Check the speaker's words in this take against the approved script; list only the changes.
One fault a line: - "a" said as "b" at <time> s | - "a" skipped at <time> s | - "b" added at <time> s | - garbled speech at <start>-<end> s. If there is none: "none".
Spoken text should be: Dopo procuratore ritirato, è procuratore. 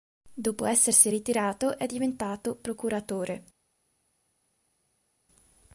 - "procuratore" said as "essersi" at 0.7 s
- "diventato" added at 1.9 s